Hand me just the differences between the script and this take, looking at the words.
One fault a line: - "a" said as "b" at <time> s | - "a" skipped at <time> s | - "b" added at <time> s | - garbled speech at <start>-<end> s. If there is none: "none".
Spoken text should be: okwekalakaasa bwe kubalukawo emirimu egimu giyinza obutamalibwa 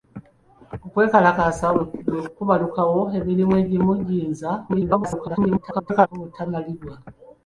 - garbled speech at 4.7-6.1 s